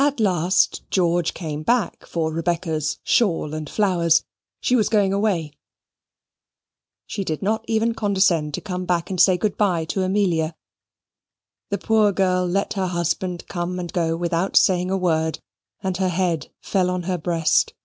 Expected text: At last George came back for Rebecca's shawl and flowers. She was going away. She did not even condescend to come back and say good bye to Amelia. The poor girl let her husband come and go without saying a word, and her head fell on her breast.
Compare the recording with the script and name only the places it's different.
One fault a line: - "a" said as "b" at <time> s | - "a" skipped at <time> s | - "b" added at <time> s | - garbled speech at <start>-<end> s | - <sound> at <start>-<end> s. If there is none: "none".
none